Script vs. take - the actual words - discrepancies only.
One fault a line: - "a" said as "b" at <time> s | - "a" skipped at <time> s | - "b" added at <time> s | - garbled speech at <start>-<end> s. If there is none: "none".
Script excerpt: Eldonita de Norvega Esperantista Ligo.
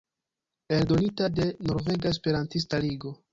none